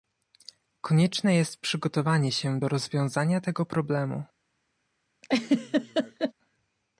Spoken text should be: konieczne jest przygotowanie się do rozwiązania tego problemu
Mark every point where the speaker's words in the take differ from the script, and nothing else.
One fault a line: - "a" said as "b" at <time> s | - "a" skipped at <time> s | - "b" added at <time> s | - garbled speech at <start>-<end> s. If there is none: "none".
none